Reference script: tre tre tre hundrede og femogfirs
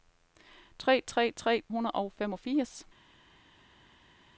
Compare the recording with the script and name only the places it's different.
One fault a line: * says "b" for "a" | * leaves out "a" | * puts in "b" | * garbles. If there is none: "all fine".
all fine